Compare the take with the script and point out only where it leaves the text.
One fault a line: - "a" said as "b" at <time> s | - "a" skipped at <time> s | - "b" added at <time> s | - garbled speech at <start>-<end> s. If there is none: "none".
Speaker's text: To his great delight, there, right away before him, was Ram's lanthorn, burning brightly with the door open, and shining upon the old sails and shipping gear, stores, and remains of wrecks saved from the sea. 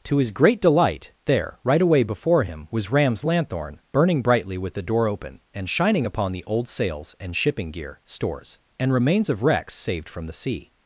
none